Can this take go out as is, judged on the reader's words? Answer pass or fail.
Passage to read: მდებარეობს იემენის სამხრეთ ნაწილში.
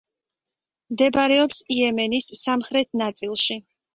pass